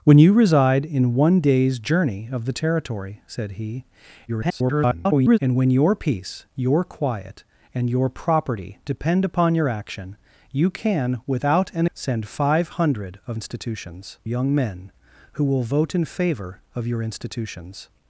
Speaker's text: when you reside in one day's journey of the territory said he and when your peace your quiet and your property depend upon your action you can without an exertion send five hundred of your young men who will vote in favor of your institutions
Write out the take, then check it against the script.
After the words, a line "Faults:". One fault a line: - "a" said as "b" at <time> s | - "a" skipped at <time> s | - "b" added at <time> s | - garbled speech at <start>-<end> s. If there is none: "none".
when you reside in one day's journey of the territory said he [garbled] and when your peace your quiet and your property depend upon your action you can without an send five hundred of institutions young men who will vote in favor of your institutions
Faults:
- garbled speech at 4.3-5.4 s
- "exertion" skipped at 11.8 s
- "your" said as "institutions" at 13.3 s